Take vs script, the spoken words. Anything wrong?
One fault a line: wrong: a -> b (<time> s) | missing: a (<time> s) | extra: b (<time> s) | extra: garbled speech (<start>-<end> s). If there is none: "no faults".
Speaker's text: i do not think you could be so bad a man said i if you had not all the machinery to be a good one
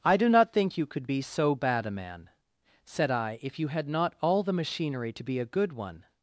no faults